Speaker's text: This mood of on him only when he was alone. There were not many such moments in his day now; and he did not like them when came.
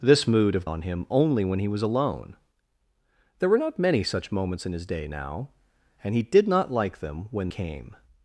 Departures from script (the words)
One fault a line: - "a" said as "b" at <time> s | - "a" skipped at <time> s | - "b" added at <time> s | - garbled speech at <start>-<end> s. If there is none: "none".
none